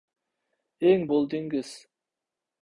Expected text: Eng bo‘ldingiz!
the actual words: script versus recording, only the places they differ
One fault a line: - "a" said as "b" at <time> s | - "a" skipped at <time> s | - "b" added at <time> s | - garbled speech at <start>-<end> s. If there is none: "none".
none